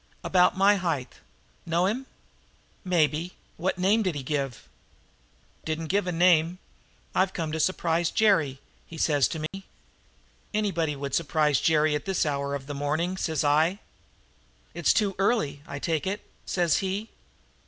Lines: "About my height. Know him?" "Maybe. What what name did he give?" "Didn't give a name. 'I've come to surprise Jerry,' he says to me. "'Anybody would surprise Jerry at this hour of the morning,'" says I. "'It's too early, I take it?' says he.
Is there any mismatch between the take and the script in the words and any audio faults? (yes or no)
yes